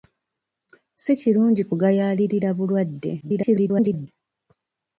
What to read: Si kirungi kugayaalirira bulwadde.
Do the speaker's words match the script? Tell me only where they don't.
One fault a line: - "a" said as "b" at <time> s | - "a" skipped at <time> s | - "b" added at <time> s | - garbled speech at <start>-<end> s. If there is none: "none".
- garbled speech at 3.2-4.1 s